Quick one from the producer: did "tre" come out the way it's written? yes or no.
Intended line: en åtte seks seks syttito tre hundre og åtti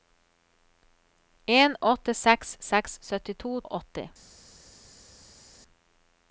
no